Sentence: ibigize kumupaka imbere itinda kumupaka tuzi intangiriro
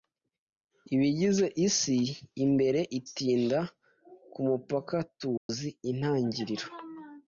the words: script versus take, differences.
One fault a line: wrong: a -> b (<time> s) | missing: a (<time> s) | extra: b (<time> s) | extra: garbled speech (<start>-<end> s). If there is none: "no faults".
wrong: kumupaka -> isi (1.7 s)